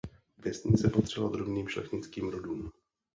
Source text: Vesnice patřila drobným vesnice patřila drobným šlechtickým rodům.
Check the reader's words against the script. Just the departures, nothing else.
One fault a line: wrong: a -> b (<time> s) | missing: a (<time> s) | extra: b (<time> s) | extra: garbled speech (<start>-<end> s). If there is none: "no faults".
missing: vesnice patřila drobným (1.7 s)